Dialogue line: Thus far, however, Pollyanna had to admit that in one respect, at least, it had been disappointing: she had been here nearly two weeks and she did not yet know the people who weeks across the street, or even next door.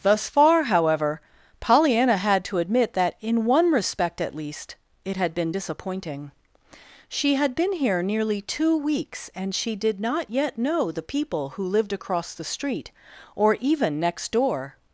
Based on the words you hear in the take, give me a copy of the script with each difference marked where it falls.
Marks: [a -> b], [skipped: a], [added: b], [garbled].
Thus far, however, Pollyanna had to admit that in one respect, at least, it had been disappointing: she had been here nearly two weeks and she did not yet know the people who [weeks -> lived] across the street, or even next door.